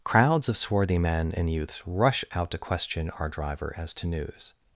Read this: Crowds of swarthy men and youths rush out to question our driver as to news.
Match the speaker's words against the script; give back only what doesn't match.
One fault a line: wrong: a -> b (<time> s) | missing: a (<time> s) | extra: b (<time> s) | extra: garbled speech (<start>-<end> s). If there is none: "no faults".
no faults